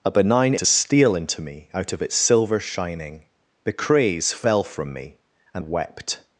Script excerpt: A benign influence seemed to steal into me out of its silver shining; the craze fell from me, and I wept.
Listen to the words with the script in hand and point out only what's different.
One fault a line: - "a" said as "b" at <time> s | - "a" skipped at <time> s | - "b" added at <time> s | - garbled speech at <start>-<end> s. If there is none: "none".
- "influence seemed" skipped at 0.6 s
- "I" skipped at 5.6 s